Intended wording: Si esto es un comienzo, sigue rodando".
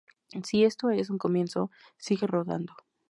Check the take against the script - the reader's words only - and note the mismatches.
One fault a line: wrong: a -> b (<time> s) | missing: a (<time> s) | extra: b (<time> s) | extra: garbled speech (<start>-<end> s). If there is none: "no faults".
no faults